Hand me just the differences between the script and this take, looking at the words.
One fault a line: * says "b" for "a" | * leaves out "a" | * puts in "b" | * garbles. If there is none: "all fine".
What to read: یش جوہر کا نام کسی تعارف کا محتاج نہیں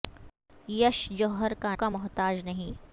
* leaves out "نام کسی تعارف"